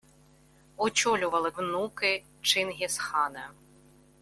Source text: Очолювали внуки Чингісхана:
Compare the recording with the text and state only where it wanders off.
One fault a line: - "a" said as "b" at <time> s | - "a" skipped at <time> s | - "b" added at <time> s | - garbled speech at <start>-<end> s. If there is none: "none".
none